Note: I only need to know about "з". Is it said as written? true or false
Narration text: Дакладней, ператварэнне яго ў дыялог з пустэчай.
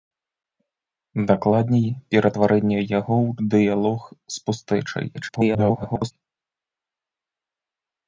true